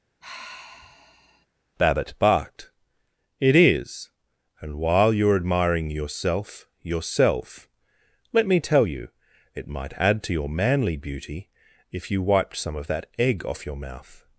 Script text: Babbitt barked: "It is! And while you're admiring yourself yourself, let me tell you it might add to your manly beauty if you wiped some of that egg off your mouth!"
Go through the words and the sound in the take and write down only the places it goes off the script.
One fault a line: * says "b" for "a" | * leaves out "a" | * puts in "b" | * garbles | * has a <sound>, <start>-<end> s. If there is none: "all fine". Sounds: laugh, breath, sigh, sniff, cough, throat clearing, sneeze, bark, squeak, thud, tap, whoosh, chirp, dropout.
* has a sigh, 0.2-1.5 s